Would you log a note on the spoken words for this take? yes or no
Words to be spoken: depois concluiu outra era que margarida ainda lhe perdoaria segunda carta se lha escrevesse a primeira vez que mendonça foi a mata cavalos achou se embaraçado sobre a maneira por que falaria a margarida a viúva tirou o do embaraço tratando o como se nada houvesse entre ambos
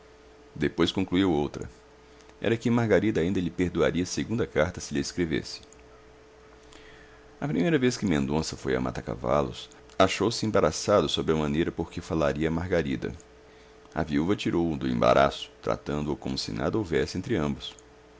no